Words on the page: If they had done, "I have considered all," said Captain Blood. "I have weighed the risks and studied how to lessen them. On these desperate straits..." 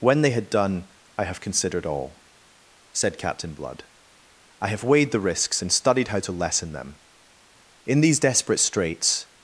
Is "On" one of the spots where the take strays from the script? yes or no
yes